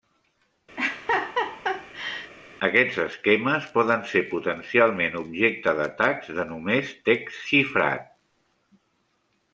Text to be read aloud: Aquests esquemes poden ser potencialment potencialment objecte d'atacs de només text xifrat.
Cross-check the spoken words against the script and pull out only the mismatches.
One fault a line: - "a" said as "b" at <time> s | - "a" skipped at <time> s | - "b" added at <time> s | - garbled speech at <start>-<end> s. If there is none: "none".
- "potencialment" skipped at 5.2 s